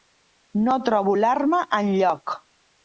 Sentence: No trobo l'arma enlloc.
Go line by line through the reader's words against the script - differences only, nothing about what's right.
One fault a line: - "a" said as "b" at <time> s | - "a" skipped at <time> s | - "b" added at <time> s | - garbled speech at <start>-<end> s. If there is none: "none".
none